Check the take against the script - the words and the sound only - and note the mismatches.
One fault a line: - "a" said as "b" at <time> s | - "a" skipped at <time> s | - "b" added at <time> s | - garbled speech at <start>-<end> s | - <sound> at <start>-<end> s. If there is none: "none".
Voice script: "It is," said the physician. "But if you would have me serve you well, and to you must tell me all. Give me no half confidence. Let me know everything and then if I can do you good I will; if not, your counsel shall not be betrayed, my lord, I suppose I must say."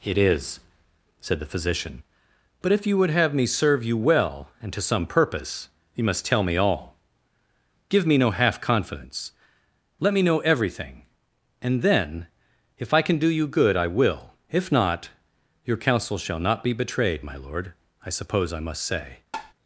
- "some purpose" added at 4.8 s
- tap at 19.3-19.5 s